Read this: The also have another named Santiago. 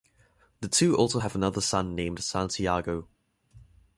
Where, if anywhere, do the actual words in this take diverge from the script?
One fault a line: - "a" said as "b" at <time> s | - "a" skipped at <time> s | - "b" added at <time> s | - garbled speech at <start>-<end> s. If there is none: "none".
- "two" added at 0.7 s
- "son" added at 1.6 s